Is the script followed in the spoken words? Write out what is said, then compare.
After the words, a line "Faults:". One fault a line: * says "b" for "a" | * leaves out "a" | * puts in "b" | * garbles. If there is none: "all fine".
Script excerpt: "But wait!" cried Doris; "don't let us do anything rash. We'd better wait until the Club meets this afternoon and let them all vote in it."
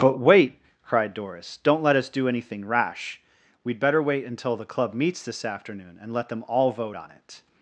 "But wait!" cried Doris; "don't let us do anything rash. We'd better wait until the Club meets this afternoon and let them all vote on it."
Faults:
* says "on" for "in"